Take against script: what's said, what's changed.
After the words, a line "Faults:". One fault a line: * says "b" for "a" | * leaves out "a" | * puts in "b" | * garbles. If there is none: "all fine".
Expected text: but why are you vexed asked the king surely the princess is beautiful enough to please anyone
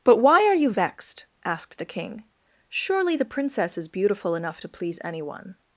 but why are you vexed asked the king surely the princess is beautiful enough to please anyone
Faults:
all fine